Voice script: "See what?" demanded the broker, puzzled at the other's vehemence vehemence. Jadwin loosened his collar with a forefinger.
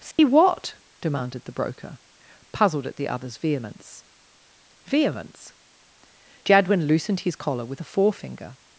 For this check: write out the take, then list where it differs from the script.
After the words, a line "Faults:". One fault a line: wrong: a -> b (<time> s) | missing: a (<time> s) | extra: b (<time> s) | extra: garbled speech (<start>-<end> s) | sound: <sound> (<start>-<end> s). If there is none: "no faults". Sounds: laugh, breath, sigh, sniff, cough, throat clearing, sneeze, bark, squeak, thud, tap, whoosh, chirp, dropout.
"See what?" demanded the broker, puzzled at the other's vehemence vehemence. Jadwin loosened his collar with a forefinger.
Faults:
sound: dropout (0.1-0.2 s)